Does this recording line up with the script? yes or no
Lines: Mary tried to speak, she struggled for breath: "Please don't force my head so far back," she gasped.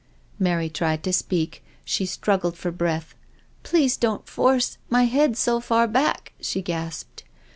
yes